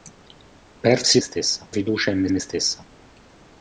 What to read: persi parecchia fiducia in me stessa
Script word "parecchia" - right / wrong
wrong